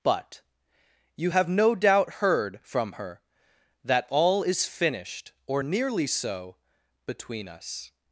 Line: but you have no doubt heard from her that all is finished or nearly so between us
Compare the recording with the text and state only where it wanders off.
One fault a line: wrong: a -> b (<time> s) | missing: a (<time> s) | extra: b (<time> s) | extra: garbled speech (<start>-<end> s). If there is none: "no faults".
no faults